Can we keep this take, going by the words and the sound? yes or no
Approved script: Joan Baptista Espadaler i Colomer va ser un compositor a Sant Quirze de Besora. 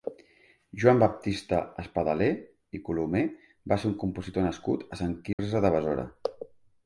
no